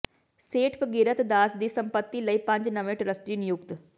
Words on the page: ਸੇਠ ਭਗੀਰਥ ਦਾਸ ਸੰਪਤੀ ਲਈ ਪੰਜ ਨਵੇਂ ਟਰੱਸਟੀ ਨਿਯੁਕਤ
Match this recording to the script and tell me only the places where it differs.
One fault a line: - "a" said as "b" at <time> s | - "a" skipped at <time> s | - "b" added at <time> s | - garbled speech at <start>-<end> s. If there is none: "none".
- "ਦੀ" added at 1.6 s